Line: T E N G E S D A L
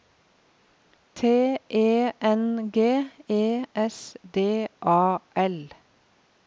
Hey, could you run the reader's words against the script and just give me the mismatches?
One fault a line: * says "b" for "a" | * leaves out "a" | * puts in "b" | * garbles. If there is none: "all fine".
all fine